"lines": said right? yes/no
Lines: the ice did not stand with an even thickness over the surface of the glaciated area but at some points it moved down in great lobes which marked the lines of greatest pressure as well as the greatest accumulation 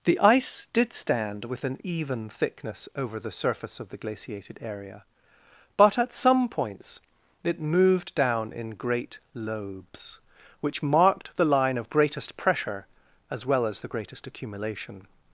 no